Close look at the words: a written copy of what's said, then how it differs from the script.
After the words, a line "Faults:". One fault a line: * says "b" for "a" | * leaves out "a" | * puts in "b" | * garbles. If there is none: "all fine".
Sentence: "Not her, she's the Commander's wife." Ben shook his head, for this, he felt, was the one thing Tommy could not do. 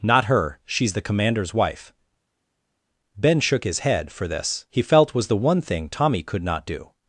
"Not her, she's the Commander's wife." Ben shook his head, for this, he felt, was the one thing Tommy could not do.
Faults:
all fine